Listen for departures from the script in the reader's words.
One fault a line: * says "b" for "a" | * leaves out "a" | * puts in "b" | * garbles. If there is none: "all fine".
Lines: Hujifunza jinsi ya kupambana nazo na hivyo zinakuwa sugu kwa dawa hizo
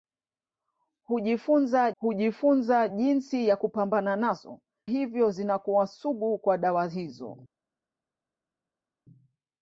* puts in "hujifunza"
* leaves out "na"